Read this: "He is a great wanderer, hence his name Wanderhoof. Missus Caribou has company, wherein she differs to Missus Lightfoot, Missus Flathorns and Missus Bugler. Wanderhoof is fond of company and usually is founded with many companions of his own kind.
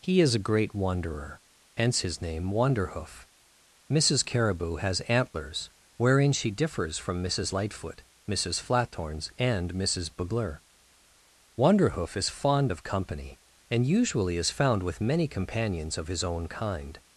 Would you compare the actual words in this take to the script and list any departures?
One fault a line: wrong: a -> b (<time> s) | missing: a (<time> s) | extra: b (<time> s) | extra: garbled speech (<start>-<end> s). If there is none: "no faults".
wrong: company -> antlers (5.0 s)
wrong: to -> from (7.0 s)
wrong: founded -> found (14.5 s)